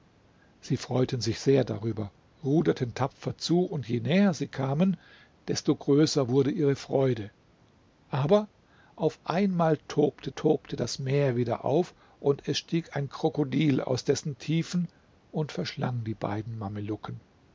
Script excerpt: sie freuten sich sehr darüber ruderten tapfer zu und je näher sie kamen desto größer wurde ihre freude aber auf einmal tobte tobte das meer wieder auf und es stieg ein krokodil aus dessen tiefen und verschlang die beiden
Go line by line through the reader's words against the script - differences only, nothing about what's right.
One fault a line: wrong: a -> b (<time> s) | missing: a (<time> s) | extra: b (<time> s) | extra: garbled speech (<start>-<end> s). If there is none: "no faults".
no faults